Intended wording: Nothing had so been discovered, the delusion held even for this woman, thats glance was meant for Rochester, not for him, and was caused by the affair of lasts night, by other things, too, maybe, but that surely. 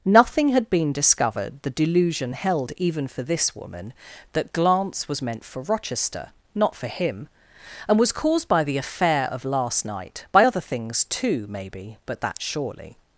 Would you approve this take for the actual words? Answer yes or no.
no